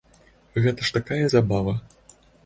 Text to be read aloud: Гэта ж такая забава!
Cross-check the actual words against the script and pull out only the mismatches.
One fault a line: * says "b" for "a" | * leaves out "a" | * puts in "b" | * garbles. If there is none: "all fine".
all fine